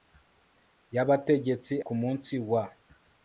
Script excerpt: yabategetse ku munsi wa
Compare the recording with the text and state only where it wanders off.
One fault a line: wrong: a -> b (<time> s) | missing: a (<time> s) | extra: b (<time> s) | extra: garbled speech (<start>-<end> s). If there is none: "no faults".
no faults